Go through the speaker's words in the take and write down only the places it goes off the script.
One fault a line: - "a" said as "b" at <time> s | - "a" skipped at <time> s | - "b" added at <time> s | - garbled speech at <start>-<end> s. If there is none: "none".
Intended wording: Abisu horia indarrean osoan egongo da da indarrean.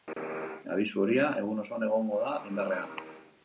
- "indarrean" said as "egun" at 1.4 s
- "da" skipped at 2.4 s